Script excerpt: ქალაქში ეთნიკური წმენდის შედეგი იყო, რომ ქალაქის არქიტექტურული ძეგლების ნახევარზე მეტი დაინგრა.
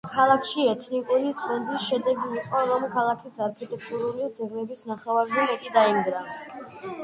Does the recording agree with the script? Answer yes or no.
yes